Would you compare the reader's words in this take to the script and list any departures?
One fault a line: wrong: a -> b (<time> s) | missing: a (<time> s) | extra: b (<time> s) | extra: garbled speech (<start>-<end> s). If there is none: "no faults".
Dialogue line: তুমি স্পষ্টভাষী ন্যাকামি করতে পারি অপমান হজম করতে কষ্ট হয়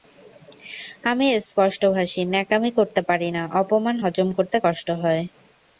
wrong: তুমি -> আমি (1.0 s)
extra: না (3.3 s)